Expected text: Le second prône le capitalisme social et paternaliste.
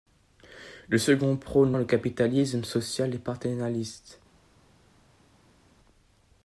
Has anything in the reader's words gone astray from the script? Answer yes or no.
no